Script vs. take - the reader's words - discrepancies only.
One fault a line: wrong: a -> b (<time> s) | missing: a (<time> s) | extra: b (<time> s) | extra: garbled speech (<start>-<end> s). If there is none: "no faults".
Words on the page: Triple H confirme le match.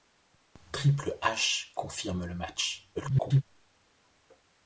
extra: garbled speech (2.9-3.4 s)